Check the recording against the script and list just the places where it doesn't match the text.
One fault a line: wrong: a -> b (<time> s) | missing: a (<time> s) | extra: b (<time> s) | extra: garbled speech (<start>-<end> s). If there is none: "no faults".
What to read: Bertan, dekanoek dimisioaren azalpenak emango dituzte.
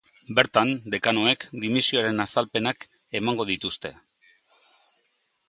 no faults